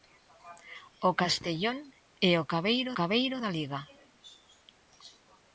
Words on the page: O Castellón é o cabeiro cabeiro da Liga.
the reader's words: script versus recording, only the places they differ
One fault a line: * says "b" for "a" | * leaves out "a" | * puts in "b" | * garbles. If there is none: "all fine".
all fine